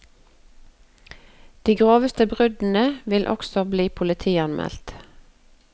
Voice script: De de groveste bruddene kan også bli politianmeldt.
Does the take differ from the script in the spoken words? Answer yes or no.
yes